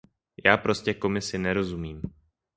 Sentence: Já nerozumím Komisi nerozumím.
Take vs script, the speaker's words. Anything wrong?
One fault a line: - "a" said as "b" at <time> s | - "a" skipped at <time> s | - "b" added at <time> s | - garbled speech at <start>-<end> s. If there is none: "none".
- "nerozumím" said as "prostě" at 0.6 s